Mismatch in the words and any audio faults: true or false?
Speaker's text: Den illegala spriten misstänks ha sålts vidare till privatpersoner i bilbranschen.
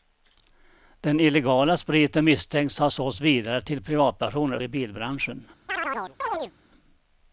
true